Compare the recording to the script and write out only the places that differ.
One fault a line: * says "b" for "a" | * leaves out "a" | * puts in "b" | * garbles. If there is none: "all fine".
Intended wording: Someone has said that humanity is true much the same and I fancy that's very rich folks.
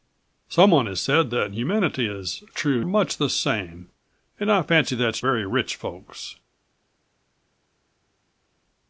all fine